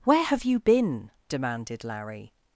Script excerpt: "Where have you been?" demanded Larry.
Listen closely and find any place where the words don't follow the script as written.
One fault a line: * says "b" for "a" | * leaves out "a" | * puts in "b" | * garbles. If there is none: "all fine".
all fine